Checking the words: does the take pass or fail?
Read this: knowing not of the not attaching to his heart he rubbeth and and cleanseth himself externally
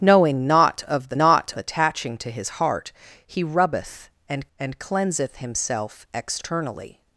pass